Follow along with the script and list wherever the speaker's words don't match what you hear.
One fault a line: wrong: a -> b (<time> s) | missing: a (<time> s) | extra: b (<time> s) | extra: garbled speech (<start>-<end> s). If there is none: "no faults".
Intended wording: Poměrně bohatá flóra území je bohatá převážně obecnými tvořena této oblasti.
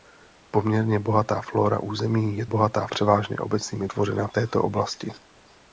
no faults